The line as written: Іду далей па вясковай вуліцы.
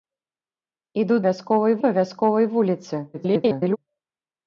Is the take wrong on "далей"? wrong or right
wrong